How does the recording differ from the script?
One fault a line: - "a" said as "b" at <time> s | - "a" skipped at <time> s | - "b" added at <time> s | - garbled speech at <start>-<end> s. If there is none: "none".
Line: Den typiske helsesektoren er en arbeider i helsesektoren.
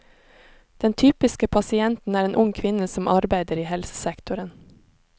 - "helsesektoren" said as "pasienten" at 1.5 s
- "ung kvinne som" added at 2.3 s